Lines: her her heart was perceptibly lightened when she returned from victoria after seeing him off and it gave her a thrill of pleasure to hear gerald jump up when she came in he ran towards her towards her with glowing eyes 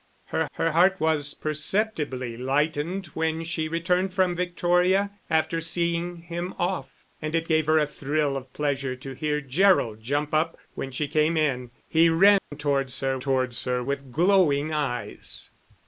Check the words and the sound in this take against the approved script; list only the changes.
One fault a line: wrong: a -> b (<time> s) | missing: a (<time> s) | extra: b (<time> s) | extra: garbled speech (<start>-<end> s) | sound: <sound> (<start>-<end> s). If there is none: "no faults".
sound: dropout (12.4-12.5 s)